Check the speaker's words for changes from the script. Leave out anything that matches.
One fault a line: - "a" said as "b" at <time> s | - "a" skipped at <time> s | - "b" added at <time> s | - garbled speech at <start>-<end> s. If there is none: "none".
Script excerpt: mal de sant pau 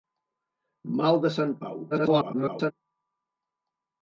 - garbled speech at 1.9-2.7 s